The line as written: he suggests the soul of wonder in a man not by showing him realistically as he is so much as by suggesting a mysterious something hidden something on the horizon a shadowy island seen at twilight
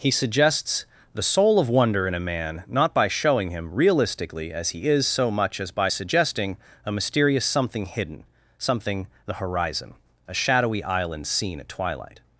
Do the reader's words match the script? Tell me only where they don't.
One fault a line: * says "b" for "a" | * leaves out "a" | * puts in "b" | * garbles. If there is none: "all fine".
* leaves out "on"